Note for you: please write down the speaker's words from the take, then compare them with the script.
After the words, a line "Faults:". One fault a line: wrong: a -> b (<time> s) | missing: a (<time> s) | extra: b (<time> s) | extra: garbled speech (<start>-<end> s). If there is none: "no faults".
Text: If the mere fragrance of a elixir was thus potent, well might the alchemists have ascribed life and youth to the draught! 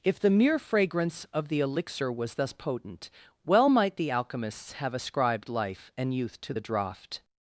If the mere fragrance of the elixir was thus potent, well might the alchemists have ascribed life and youth to the draught!
Faults:
wrong: a -> the (1.5 s)